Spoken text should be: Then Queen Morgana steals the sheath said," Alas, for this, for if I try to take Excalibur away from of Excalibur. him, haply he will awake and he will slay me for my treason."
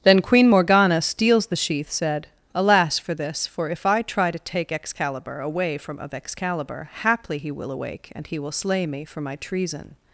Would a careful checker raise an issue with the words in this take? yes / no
yes